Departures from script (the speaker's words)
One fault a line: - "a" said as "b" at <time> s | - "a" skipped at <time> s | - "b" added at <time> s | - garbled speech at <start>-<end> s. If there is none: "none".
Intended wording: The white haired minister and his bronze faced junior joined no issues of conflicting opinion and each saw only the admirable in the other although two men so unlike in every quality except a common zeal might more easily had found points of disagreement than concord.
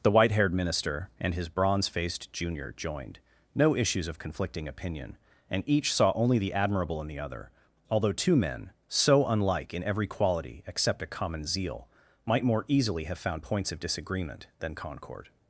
- "had" said as "have" at 13.0 s